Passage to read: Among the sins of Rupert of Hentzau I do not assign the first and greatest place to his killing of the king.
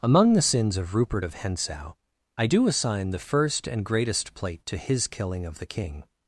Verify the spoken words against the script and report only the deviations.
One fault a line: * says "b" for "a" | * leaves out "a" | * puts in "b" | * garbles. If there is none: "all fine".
* leaves out "not"
* says "plate" for "place"